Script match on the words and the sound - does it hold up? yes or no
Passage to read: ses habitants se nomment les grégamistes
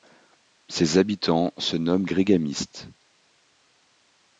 no